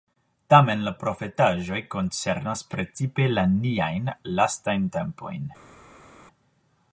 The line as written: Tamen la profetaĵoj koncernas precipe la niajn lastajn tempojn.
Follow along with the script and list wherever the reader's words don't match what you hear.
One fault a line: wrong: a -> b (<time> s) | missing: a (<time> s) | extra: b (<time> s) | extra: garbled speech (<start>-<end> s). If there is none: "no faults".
no faults